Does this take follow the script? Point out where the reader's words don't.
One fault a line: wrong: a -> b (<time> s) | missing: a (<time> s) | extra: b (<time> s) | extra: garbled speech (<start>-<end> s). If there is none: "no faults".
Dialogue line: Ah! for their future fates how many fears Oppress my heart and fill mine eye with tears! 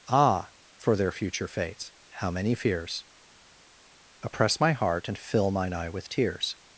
no faults